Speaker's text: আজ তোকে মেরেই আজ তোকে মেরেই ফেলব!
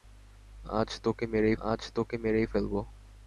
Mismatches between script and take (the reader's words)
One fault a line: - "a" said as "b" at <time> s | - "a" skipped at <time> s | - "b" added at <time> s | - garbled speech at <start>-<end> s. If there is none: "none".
none